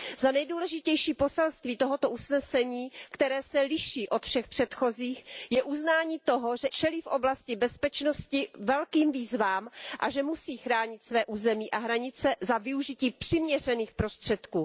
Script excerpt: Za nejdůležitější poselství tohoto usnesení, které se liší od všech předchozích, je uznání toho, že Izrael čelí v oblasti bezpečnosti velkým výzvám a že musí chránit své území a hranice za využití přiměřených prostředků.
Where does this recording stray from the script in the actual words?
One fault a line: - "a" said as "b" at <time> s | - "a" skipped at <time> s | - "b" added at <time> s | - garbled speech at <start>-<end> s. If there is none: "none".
- "Izrael" skipped at 6.7 s